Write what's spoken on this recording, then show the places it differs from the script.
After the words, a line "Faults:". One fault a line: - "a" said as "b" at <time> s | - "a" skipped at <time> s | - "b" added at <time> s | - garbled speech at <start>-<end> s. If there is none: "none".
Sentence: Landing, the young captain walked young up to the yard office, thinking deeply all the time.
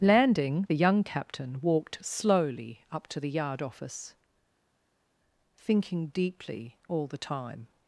Landing, the young captain walked slowly up to the yard office, thinking deeply all the time.
Faults:
- "young" said as "slowly" at 2.0 s